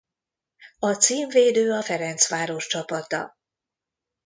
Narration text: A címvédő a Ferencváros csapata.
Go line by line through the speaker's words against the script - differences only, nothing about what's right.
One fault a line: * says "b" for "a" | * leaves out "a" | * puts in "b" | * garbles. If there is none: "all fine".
all fine